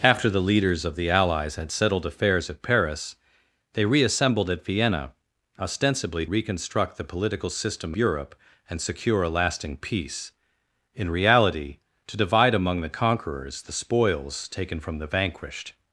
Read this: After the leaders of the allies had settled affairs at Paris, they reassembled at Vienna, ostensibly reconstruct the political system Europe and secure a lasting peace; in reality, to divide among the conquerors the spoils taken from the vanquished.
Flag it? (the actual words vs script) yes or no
no